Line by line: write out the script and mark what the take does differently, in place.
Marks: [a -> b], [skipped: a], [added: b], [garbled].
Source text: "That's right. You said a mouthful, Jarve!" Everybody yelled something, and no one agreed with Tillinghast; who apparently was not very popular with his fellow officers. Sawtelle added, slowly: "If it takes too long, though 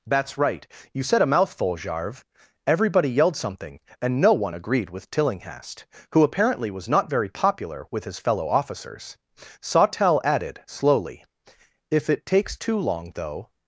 "That's right. You said a mouthful, Jarve!" Everybody yelled something, and no one agreed with Tillinghast; who apparently was not very popular with his fellow officers. Sawtelle added, slowly: "If it takes too long, though